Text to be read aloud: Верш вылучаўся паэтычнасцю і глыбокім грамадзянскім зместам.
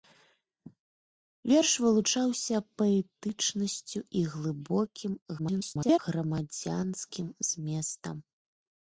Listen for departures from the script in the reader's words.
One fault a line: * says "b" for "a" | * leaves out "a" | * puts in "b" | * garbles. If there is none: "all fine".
* garbles